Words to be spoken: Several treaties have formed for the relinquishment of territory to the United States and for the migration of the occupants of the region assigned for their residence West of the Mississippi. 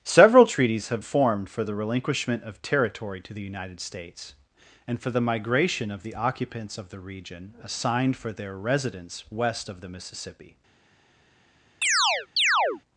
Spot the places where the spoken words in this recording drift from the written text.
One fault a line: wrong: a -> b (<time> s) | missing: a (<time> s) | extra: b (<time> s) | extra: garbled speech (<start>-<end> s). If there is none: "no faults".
no faults